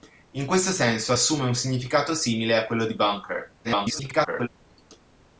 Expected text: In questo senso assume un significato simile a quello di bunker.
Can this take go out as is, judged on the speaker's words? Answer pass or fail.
fail